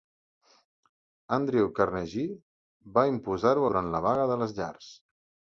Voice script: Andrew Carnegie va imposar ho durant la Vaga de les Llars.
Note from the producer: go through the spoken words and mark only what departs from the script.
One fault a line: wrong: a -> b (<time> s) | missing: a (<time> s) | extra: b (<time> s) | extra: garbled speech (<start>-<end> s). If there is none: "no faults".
no faults